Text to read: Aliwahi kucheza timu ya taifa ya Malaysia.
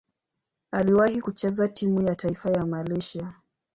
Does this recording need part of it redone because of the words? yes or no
no